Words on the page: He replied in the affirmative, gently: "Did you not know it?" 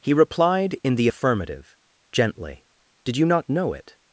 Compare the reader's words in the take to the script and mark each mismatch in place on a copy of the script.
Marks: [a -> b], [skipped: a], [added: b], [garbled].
He replied in the affirmative, gently: "Did you not know it?"